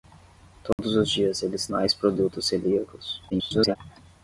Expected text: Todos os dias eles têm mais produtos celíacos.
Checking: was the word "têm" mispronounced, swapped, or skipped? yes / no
yes